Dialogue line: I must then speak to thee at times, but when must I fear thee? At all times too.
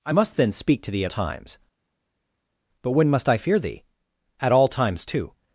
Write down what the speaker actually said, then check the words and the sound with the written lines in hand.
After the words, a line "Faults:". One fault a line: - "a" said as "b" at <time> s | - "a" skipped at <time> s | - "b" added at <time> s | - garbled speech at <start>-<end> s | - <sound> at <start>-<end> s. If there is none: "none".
I must then speak to thee at times, but when must I fear thee? At all times too.
Faults:
none